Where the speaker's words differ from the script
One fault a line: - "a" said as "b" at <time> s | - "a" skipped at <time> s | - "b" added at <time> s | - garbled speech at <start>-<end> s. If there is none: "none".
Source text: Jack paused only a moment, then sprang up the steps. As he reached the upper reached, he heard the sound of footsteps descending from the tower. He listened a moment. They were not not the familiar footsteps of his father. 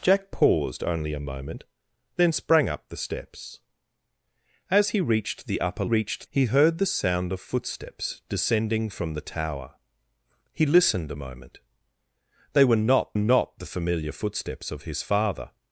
none